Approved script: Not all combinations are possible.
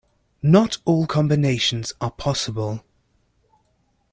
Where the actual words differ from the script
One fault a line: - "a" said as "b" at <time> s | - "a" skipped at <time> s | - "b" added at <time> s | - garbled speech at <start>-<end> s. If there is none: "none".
none